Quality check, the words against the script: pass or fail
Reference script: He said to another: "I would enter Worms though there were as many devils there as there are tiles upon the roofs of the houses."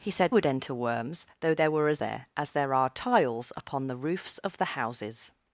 fail